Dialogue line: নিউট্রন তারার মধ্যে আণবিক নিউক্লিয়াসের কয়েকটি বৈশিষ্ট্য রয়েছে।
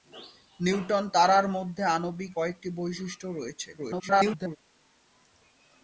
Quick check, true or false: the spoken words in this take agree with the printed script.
false